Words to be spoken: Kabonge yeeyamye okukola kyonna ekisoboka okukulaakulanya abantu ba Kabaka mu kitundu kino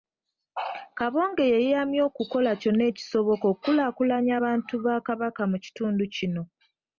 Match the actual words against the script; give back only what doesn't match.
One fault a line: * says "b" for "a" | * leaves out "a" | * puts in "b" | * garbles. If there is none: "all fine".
all fine